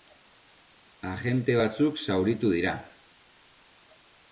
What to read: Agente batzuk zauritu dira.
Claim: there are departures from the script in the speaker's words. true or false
false